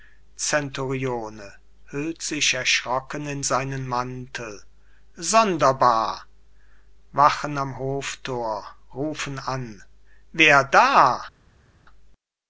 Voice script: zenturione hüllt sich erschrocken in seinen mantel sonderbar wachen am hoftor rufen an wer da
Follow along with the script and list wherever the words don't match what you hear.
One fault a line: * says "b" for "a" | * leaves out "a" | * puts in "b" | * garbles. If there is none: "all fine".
all fine